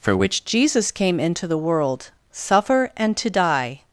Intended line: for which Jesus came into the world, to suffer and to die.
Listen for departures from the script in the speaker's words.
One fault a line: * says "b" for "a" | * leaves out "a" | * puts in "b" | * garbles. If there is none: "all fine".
* leaves out "to"